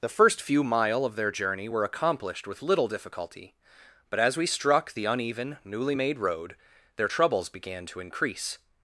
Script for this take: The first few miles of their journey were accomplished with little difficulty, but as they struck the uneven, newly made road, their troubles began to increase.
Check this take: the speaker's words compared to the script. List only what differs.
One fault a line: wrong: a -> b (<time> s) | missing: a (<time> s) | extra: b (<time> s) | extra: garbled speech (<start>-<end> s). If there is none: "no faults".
wrong: miles -> mile (0.6 s)
wrong: they -> we (4.4 s)